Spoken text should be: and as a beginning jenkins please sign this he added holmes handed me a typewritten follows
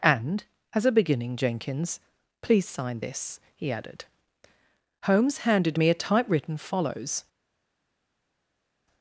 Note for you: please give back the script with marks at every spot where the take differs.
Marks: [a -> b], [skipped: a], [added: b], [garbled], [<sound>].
and as a beginning jenkins please sign this he added holmes handed me a typewritten follows